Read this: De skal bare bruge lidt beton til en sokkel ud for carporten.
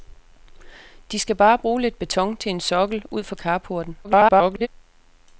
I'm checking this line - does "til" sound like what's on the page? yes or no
yes